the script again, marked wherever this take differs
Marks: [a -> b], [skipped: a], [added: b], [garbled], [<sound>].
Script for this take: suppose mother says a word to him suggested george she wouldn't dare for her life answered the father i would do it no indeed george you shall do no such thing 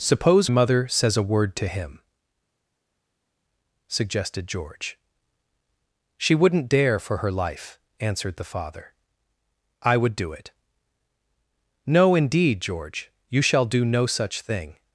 suppose mother says a word to him suggested george she wouldn't dare for her life answered the father i would do it no indeed george you shall do no such thing